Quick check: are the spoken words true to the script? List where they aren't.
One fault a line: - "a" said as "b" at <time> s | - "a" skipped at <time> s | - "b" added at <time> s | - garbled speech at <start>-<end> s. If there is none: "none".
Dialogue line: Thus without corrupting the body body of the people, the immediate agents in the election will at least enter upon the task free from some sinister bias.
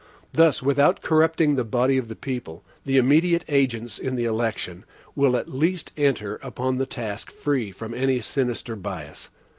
- "body" skipped at 1.9 s
- "some" said as "any" at 7.9 s